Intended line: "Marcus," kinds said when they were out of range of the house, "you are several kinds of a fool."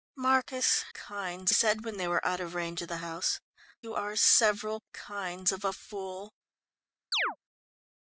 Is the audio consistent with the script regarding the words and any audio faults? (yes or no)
no